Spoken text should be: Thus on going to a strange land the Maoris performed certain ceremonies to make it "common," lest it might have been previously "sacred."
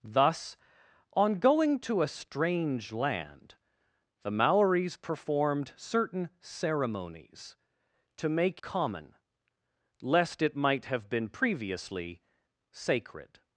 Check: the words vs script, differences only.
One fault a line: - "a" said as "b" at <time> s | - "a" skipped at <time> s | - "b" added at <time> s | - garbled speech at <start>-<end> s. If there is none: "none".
- "it" skipped at 8.6 s